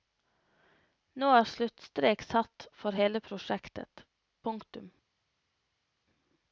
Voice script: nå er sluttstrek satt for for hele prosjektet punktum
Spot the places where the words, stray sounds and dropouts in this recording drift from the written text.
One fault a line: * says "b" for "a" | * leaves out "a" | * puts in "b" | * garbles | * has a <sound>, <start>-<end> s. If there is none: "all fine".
* leaves out "for"